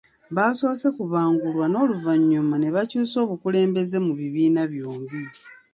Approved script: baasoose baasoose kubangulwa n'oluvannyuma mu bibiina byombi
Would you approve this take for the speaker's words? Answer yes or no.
no